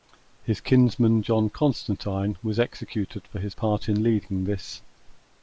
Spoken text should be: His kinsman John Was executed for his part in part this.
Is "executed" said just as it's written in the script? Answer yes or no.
yes